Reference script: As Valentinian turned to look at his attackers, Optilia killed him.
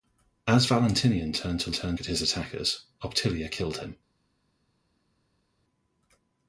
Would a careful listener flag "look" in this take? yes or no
yes